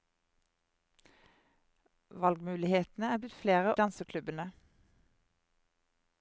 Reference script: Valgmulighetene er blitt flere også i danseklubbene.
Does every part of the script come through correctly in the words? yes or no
no